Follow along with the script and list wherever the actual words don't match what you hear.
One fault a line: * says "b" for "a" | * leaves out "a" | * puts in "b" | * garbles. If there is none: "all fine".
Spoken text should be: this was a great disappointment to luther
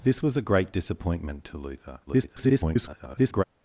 * garbles